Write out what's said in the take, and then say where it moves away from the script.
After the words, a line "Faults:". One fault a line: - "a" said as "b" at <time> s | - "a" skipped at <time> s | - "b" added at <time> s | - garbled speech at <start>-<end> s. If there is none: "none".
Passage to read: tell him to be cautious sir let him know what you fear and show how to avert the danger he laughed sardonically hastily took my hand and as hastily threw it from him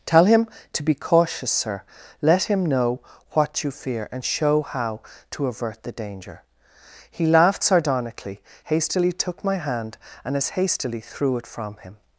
tell him to be cautious sir let him know what you fear and show how to avert the danger he laughed sardonically hastily took my hand and as hastily threw it from him
Faults:
none